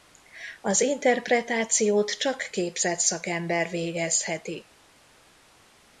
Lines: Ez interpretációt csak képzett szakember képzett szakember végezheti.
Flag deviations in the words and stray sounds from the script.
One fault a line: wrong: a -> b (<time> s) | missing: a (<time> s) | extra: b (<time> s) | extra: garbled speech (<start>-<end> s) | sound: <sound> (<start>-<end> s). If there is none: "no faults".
wrong: Ez -> Az (0.6 s)
missing: képzett szakember (3.7 s)